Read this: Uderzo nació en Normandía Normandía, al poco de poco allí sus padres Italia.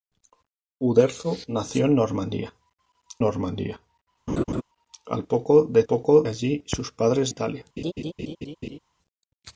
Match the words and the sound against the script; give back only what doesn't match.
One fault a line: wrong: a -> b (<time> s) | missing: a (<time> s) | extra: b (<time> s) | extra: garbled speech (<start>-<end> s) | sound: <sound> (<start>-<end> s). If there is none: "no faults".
sound: laugh (4.3-4.6 s)
sound: laugh (7.8-8.8 s)